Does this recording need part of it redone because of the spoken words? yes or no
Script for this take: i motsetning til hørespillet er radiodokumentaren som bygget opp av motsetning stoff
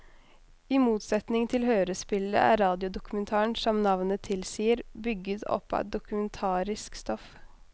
yes